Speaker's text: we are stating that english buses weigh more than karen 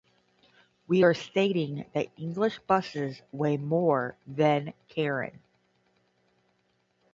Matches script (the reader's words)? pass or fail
pass